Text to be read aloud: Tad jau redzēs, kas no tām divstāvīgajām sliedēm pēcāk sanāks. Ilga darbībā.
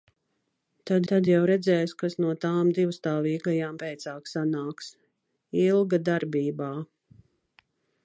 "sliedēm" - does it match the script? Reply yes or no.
no